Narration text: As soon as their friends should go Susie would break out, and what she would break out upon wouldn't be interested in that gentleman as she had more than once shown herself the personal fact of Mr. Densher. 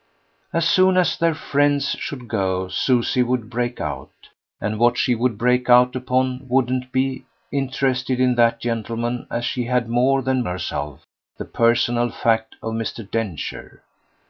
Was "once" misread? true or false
true